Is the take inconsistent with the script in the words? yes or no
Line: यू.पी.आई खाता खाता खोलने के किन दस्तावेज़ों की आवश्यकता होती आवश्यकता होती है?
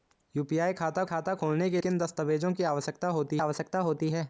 no